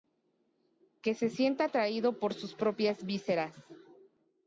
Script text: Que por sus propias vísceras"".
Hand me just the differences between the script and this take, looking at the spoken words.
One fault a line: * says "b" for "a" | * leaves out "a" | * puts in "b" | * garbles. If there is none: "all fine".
* puts in "se sienta atraído"